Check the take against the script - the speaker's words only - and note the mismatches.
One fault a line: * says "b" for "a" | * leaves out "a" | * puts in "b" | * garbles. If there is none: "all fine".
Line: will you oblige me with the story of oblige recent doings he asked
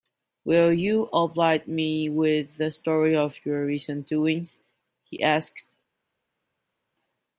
* says "your" for "oblige"